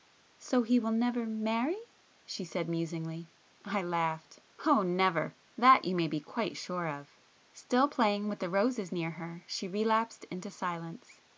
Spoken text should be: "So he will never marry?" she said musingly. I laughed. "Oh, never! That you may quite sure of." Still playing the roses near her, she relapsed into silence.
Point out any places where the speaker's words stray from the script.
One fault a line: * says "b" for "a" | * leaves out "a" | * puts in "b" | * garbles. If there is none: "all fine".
* puts in "be"
* puts in "with"